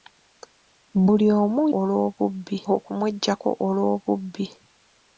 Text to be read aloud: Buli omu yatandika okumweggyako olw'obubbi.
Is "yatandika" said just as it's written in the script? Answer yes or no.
no